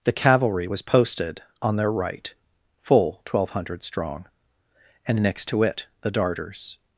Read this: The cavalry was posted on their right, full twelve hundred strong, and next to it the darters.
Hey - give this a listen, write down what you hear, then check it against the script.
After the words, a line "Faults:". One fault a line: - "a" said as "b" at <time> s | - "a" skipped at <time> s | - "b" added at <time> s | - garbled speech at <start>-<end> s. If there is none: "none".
The cavalry was posted on their right, full twelve hundred strong, and next to it the darters.
Faults:
none